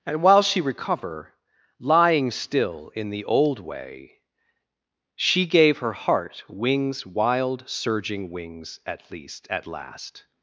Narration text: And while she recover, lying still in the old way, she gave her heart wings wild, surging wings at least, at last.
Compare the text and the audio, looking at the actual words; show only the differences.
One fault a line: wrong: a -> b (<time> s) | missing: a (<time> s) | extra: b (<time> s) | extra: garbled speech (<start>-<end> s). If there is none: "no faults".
no faults